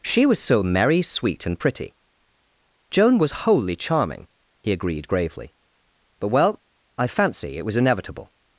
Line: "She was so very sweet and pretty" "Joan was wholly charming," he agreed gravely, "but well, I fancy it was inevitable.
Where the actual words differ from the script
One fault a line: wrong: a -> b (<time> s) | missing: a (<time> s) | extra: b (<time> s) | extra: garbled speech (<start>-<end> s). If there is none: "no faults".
wrong: very -> merry (0.6 s)